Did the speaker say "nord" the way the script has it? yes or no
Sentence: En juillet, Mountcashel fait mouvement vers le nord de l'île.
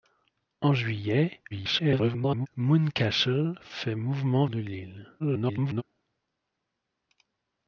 no